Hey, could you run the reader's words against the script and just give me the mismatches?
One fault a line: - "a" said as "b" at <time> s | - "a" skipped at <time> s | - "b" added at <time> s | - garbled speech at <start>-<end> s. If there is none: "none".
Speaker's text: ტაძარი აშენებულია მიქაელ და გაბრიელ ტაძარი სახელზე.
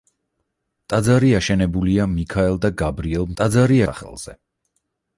none